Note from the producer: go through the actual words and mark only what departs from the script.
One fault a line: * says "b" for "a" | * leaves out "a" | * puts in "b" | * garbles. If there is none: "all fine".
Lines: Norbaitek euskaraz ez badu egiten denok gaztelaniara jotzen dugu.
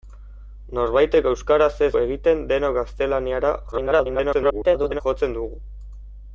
* leaves out "badu"
* garbles